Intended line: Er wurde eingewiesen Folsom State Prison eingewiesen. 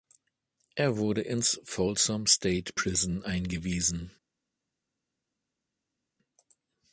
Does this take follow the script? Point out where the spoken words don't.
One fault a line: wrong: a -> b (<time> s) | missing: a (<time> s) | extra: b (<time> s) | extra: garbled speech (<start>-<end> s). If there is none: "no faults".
wrong: eingewiesen -> ins (1.2 s)